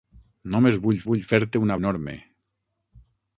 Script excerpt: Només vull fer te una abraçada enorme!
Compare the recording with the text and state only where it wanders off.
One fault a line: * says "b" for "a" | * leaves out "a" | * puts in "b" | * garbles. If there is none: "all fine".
* puts in "vull"
* leaves out "abraçada"